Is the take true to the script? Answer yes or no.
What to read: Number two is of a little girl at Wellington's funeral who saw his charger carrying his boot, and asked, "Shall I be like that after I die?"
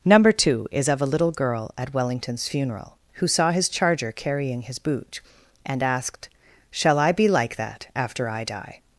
yes